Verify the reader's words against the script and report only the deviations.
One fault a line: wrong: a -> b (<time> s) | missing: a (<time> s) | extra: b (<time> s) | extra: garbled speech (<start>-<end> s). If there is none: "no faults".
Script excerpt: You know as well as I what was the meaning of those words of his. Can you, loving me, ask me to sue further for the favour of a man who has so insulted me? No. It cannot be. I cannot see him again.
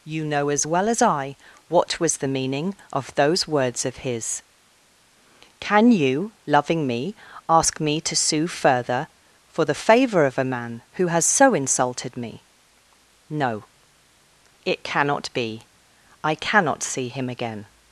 no faults